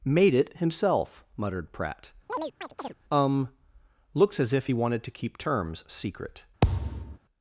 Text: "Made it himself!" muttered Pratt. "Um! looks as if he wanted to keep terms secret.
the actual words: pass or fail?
pass